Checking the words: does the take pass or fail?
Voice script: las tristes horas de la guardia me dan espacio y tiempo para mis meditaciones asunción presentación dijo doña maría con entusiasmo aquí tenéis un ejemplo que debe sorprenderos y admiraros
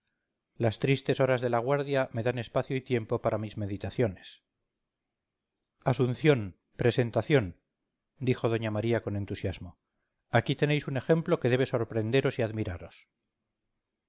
pass